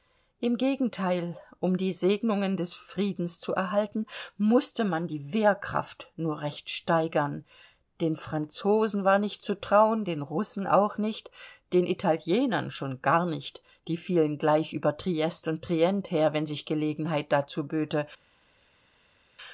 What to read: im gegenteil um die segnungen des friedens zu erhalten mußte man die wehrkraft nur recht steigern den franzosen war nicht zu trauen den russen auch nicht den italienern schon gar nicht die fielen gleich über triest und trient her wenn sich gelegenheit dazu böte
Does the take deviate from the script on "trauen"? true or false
false